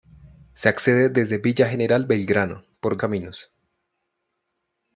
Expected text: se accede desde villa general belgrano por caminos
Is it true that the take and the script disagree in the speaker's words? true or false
false